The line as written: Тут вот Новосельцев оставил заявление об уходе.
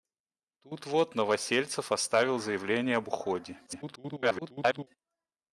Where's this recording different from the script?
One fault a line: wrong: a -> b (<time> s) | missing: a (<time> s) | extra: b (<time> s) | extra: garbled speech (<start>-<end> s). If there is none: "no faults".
extra: garbled speech (3.7-4.9 s)